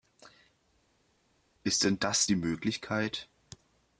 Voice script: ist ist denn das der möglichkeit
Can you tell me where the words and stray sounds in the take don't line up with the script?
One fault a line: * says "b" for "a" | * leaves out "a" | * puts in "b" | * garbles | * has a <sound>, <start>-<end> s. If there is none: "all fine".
* leaves out "ist"
* says "die" for "der"